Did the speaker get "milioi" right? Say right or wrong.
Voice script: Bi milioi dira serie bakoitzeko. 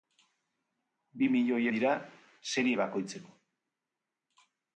right